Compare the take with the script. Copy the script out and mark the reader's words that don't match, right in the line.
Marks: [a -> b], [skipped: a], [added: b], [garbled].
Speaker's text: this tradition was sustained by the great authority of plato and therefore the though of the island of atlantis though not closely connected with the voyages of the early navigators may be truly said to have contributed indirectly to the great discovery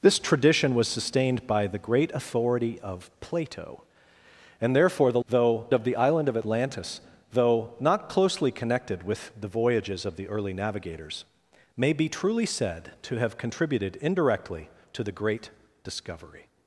this tradition was sustained by the great authority of plato and therefore the though of the island of atlantis though not closely connected with the voyages of the early navigators may be truly said to have contributed indirectly to the great discovery